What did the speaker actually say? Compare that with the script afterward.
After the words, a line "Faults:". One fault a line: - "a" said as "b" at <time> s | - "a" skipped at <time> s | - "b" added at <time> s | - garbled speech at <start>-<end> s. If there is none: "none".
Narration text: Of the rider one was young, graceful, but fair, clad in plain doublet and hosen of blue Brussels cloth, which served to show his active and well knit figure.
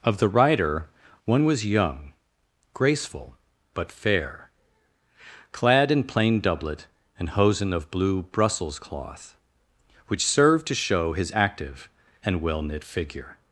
Of the rider one was young, graceful, but fair, clad in plain doublet and hosen of blue Brussels cloth, which served to show his active and well knit figure.
Faults:
none